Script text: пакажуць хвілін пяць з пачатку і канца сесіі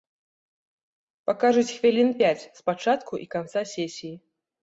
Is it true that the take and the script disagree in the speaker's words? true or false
false